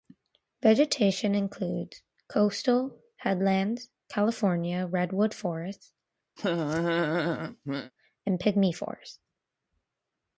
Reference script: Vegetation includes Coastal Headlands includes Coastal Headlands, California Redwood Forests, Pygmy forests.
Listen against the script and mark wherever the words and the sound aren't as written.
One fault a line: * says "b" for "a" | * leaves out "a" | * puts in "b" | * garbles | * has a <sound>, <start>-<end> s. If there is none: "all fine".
* leaves out "includes Coastal Headlands"
* has a laugh, 6.4-7.9 s
* puts in "and"